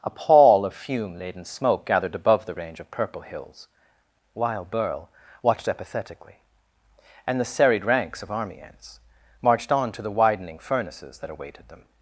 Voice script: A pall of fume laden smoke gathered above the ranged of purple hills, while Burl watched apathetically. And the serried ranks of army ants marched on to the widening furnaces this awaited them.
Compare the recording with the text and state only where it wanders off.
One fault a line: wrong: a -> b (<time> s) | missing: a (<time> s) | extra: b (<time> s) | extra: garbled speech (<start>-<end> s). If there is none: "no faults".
wrong: ranged -> range (2.5 s)
wrong: this -> that (11.2 s)